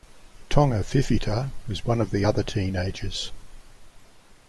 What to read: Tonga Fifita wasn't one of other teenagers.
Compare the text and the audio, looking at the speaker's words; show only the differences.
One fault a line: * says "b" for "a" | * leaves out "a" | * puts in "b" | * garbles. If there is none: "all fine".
* says "was" for "wasn't"
* puts in "the"